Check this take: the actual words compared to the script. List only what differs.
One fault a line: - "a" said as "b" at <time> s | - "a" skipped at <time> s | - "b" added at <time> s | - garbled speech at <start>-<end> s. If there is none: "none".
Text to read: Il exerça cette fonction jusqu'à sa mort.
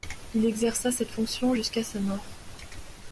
none